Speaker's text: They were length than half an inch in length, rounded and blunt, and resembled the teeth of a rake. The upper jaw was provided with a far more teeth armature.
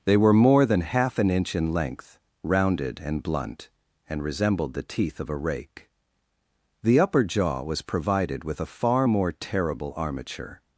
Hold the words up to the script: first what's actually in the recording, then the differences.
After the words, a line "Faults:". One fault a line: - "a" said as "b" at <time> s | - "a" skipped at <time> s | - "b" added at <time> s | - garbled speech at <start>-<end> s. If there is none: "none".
They were more than half an inch in length, rounded and blunt, and resembled the teeth of a rake. The upper jaw was provided with a far more terrible armature.
Faults:
- "length" said as "more" at 0.3 s
- "teeth" said as "terrible" at 9.3 s